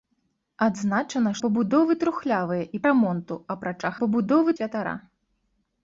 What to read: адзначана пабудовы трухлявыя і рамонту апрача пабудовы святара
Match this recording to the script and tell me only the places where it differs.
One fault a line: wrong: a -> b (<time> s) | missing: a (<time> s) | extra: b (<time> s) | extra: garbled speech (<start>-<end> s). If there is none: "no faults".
no faults